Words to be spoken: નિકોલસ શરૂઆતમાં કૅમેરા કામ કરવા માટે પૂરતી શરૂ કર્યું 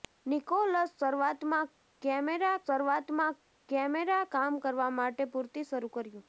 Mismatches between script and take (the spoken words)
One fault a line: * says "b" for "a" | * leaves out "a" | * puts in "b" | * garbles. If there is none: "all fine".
* puts in "શરૂઆતમાં કૅમેરા"